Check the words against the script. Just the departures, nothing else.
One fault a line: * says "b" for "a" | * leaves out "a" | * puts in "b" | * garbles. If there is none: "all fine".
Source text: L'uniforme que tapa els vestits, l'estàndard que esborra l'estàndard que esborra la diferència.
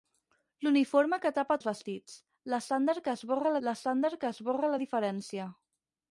all fine